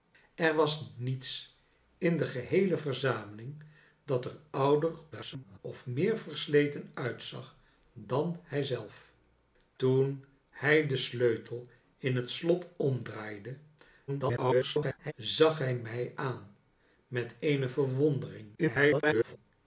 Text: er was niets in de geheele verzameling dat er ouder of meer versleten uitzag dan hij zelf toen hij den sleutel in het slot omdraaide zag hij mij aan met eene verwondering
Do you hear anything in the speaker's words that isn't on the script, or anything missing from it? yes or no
yes